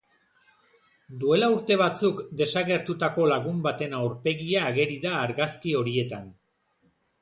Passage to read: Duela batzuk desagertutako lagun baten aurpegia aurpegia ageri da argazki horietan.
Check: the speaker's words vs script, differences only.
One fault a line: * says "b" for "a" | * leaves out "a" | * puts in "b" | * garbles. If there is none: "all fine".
* puts in "urte"
* leaves out "aurpegia"